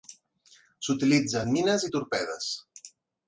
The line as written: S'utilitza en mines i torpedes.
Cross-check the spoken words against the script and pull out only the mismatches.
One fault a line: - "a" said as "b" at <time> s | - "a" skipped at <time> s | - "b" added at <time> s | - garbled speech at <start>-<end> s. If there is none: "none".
none